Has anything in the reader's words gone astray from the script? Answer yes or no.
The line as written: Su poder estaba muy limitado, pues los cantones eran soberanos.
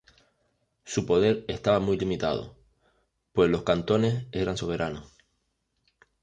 no